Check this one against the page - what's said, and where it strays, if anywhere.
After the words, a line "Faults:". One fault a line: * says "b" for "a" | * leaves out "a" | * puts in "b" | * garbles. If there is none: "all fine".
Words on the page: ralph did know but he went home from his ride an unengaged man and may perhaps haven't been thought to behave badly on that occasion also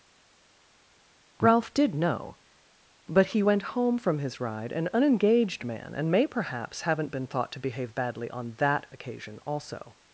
ralph did know but he went home from his ride an unengaged man and may perhaps haven't been thought to behave badly on that occasion also
Faults:
all fine